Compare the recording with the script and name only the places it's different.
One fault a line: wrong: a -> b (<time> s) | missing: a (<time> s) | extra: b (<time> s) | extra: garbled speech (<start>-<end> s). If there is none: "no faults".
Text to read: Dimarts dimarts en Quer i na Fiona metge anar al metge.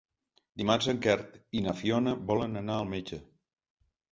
missing: dimarts (0.9 s)
wrong: metge -> volen (2.3 s)